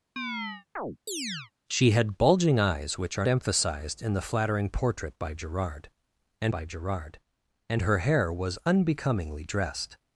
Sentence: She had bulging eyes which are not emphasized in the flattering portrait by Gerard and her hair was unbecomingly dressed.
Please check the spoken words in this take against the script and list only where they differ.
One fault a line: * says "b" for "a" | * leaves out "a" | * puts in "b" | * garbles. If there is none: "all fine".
* leaves out "not"
* puts in "by Gerard and"